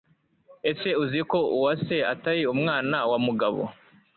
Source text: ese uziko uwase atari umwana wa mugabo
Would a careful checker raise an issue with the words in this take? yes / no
no